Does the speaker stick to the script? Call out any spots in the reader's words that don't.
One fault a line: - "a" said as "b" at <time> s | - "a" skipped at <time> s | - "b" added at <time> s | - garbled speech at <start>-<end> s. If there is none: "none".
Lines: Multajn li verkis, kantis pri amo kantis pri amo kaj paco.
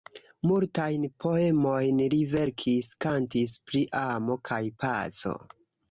- "poemojn" added at 1.2 s
- "kantis pri amo" skipped at 4.4 s